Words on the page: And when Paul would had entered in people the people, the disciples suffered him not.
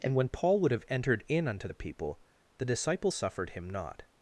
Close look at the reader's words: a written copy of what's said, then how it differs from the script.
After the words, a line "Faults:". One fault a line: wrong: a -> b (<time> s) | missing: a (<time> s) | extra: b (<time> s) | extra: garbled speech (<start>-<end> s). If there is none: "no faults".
And when Paul would have entered in unto the people, the disciples suffered him not.
Faults:
wrong: had -> have (0.7 s)
wrong: people -> unto (1.5 s)